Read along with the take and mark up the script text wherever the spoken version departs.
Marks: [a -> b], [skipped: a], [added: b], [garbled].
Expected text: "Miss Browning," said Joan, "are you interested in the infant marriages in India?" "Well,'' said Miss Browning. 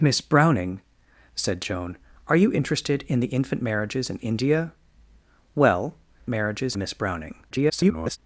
"Miss Browning," said Joan, "are you interested in the infant marriages in India?" "Well,'' [said -> marriages] Miss Browning. [garbled]